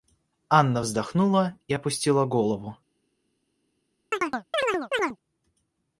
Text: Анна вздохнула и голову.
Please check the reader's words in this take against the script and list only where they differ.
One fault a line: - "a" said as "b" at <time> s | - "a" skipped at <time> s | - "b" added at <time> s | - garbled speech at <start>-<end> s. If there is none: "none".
- "опустила" added at 1.7 s